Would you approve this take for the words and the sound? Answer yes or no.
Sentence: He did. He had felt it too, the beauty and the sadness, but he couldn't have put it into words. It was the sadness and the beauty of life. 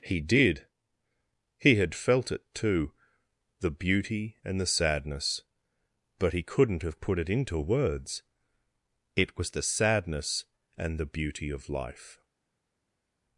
yes